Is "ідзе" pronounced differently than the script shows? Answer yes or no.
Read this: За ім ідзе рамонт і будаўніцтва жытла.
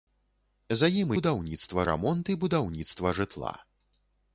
yes